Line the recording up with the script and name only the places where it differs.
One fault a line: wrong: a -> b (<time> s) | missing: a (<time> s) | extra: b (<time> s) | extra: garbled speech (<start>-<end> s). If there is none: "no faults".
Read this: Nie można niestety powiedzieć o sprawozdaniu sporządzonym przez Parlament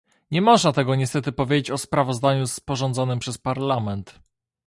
extra: tego (0.7 s)